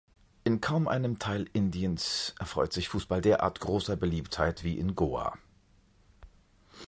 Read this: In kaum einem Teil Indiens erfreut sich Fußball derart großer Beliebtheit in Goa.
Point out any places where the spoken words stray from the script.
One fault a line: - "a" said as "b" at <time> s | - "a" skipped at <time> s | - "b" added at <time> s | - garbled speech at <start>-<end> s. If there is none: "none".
- "wie" added at 4.6 s